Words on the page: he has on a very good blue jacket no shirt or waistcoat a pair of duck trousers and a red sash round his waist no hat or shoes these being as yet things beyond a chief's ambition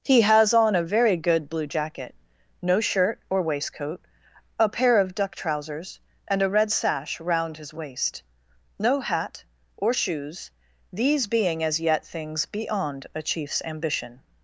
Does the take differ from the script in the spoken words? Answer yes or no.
no